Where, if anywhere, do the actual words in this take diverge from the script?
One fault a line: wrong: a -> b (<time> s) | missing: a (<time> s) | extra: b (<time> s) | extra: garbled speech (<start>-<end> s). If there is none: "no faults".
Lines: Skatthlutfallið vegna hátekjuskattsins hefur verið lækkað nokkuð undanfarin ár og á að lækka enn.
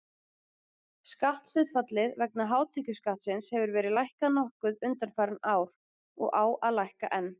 no faults